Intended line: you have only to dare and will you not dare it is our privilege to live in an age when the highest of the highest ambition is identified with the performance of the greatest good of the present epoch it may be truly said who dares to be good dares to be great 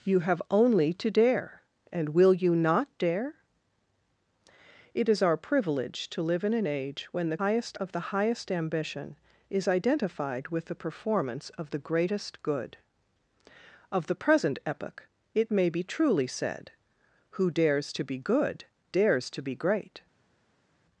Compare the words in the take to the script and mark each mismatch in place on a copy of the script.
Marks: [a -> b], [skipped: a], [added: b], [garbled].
you have only to dare and will you not dare it is our privilege to live in an age when the highest of the highest ambition is identified with the performance of the greatest good of the present epoch it may be truly said who dares to be good dares to be great